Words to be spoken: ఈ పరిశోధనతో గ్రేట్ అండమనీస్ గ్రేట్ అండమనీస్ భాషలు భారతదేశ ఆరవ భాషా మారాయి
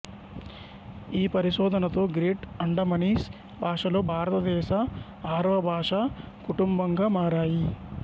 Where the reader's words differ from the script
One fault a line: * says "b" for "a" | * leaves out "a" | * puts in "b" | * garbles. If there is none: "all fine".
* leaves out "గ్రేట్ అండమనీస్"
* puts in "కుటుంబంగా"